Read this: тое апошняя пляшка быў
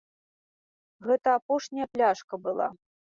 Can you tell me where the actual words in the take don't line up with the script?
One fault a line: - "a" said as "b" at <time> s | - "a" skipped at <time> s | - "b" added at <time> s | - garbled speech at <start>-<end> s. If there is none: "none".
- "тое" said as "гэта" at 1.1 s
- "быў" said as "была" at 2.5 s